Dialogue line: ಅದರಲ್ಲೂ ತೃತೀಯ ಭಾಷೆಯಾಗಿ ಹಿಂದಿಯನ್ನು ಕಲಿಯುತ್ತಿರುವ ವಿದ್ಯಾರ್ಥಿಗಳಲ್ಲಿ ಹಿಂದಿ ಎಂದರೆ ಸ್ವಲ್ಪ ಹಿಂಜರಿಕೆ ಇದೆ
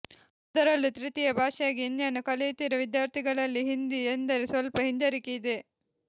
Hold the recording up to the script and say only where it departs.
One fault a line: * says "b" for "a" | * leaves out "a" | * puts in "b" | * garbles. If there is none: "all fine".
all fine